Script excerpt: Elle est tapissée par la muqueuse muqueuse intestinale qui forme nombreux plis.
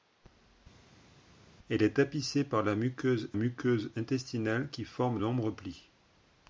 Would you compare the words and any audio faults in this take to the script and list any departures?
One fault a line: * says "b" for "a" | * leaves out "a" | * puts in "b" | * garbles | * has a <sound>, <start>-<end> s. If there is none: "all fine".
all fine